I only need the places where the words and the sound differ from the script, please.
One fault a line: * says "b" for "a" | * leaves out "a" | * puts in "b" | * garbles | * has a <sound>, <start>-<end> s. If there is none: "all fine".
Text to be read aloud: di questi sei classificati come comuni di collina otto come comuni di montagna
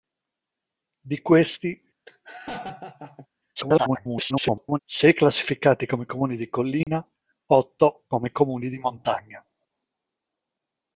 * has a laugh, 2.1-3.3 s
* garbles
* has a dropout, 6.8-6.9 s